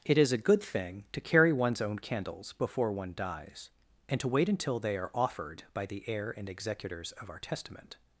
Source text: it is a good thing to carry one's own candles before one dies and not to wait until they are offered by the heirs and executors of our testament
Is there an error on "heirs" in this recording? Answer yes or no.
yes